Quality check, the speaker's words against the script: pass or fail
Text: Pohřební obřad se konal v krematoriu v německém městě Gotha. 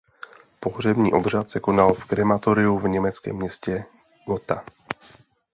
pass